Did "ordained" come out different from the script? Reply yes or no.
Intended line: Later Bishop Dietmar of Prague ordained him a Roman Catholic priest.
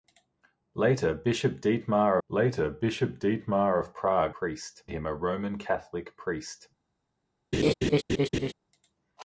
yes